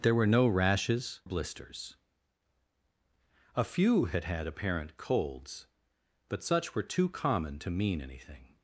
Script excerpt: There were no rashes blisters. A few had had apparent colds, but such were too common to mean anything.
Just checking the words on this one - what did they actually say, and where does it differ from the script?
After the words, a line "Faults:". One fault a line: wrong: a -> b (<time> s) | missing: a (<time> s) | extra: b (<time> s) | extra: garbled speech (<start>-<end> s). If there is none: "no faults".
There were no rashes blisters. A few had had apparent colds, but such were too common to mean anything.
Faults:
no faults